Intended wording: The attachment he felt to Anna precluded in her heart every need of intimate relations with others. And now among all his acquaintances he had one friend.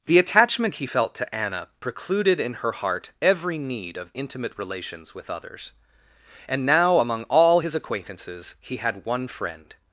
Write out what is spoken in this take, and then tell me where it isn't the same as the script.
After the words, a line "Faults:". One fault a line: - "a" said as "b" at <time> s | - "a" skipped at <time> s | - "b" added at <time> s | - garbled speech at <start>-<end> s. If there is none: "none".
The attachment he felt to Anna precluded in her heart every need of intimate relations with others. And now among all his acquaintances he had one friend.
Faults:
none